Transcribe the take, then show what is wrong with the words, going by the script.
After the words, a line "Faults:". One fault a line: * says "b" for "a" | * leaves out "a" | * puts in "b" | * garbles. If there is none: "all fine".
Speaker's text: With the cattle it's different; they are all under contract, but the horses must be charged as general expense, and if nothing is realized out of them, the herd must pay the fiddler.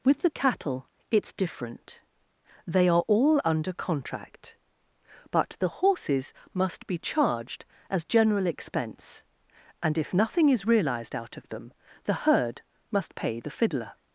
With the cattle it's different; they are all under contract, but the horses must be charged as general expense, and if nothing is realized out of them, the herd must pay the fiddler.
Faults:
all fine